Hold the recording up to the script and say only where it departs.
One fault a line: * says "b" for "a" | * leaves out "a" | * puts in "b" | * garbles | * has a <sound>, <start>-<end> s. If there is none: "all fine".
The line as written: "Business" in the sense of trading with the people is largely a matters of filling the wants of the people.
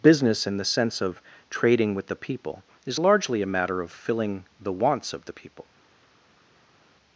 * says "matter" for "matters"